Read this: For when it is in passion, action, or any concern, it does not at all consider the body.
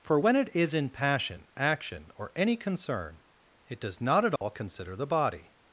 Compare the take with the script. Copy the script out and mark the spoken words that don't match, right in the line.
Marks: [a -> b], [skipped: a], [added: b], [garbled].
For when it is in passion, action, or any concern, it does not at all consider the body.